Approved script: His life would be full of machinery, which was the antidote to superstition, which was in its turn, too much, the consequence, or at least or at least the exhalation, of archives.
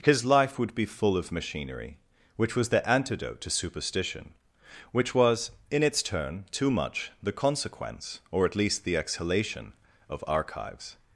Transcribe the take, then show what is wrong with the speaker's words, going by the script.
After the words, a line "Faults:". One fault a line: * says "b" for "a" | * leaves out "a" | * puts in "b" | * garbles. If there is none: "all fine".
His life would be full of machinery, which was the antidote to superstition, which was in its turn, too much, the consequence, or at least the exhalation, of archives.
Faults:
* leaves out "or at least"